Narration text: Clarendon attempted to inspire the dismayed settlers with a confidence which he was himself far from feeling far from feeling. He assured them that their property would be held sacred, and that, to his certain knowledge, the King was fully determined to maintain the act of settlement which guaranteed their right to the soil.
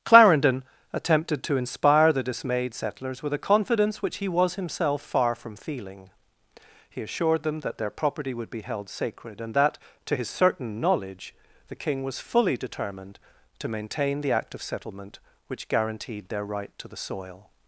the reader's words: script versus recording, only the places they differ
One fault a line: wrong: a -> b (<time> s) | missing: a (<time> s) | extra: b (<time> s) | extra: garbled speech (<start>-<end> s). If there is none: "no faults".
missing: far from feeling (6.1 s)